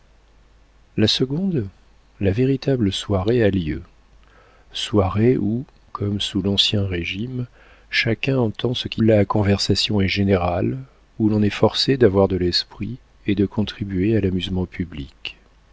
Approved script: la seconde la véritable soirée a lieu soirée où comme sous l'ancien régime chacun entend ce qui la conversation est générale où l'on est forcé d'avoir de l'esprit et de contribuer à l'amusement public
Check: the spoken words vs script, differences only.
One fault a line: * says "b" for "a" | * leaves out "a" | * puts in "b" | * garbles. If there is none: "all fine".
all fine